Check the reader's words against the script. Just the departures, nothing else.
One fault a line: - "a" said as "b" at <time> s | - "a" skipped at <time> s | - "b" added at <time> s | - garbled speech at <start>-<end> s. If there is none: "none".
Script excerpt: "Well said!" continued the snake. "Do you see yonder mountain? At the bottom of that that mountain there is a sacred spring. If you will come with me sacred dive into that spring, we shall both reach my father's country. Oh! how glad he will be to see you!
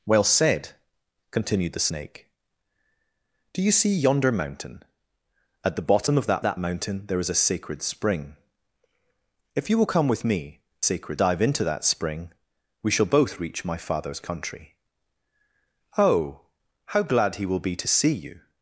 none